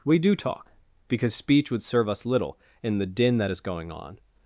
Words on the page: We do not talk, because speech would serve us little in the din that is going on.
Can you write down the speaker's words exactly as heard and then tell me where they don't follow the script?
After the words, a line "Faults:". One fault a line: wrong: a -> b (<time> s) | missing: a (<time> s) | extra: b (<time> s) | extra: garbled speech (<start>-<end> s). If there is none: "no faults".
We do talk, because speech would serve us little in the din that is going on.
Faults:
missing: not (0.3 s)